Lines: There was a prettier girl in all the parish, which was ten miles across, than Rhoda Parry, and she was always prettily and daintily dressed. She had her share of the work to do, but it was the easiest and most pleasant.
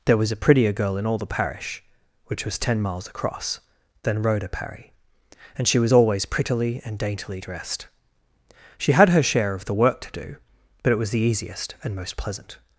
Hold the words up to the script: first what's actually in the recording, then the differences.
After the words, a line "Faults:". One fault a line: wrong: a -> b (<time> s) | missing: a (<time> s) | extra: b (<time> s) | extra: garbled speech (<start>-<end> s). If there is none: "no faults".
There was a prettier girl in all the parish, which was ten miles across, than Rhoda Parry, and she was always prettily and daintily dressed. She had her share of the work to do, but it was the easiest and most pleasant.
Faults:
no faults